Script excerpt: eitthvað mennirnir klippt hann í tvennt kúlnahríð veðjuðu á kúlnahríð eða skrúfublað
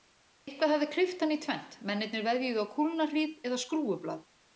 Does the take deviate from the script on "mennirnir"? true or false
true